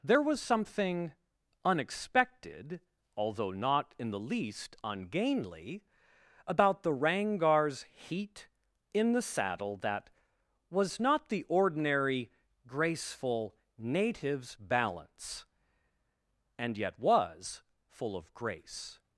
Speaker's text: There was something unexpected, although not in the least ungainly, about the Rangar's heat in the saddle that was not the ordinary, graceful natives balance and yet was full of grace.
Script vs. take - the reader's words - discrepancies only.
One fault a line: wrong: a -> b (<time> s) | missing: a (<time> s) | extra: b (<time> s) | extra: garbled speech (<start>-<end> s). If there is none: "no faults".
no faults